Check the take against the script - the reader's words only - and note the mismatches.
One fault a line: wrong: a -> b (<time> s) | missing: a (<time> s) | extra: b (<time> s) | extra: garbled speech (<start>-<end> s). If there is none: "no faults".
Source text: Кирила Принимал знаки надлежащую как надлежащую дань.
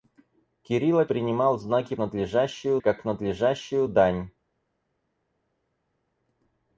no faults